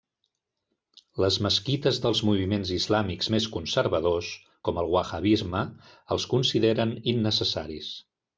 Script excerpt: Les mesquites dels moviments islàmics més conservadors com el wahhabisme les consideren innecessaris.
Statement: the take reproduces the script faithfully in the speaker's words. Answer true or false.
false